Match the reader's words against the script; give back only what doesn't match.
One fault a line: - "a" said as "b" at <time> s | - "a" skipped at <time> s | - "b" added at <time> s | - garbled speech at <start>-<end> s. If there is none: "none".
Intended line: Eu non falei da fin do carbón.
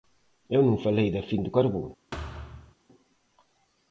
none